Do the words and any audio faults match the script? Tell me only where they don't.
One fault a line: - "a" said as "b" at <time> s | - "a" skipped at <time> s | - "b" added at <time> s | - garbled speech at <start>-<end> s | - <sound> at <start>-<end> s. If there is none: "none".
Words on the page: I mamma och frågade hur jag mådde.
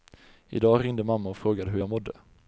- "dag ringde" added at 0.6 s